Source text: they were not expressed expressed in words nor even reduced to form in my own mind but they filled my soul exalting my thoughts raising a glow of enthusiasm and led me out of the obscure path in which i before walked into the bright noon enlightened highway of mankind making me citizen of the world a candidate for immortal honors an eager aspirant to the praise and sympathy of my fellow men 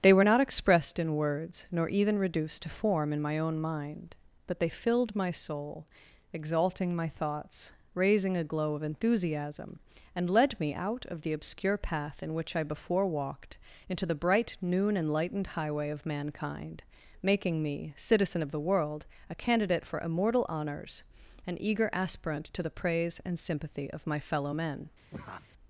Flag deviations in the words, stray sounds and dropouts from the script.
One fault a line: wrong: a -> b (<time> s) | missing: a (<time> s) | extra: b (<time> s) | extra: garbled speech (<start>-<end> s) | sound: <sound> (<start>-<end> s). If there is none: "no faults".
missing: expressed (1.0 s)
sound: laugh (25.1-25.5 s)